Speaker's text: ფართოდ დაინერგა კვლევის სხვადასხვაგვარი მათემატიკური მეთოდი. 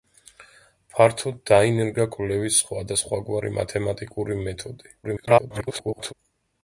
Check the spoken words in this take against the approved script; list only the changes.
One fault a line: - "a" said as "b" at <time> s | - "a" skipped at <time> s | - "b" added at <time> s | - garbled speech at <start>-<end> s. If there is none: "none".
- garbled speech at 5.0-6.1 s